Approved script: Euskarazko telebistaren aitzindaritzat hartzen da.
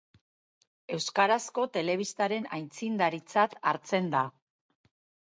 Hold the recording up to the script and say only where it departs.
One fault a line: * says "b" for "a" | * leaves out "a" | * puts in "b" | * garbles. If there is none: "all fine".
all fine